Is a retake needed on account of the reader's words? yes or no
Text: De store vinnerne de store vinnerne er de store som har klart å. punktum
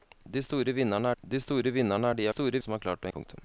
no